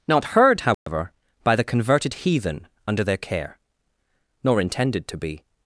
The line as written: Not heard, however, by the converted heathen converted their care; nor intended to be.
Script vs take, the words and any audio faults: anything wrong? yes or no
yes